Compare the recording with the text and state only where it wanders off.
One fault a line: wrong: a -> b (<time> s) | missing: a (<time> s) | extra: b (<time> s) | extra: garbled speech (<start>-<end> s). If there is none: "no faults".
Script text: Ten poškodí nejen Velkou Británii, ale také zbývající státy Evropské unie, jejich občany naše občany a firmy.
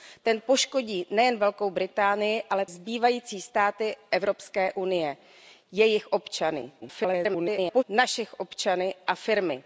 missing: také (2.6 s)
extra: garbled speech (6.8-7.8 s)